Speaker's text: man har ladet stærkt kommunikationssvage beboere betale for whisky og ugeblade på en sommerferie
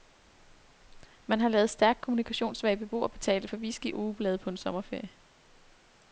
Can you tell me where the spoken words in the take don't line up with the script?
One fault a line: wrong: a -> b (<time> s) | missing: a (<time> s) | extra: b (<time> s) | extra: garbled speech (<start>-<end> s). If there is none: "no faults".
no faults